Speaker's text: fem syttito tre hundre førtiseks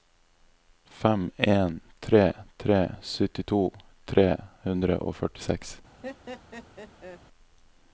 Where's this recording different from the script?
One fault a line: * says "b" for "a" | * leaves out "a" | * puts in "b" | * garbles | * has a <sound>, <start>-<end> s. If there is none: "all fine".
* puts in "en tre tre"
* puts in "og"
* has a laugh, 6.0-7.2 s